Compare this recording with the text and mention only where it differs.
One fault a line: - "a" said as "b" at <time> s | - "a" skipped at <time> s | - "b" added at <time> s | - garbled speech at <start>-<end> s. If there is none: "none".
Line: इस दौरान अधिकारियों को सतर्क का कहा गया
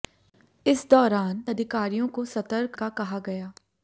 none